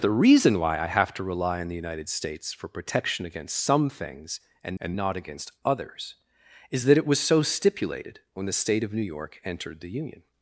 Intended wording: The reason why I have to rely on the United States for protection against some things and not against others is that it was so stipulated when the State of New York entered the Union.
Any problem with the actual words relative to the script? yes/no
yes